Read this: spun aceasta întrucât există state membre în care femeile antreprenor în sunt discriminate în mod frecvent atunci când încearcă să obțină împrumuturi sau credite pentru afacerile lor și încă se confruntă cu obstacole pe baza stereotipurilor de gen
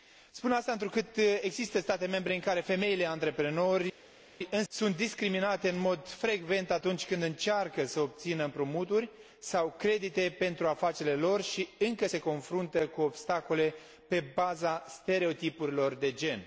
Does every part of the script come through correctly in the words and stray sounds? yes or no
yes